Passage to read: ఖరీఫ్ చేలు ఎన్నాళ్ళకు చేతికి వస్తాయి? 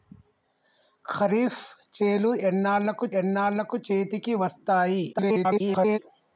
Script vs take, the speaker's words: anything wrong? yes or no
yes